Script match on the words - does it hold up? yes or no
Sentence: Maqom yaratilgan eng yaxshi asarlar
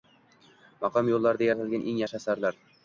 no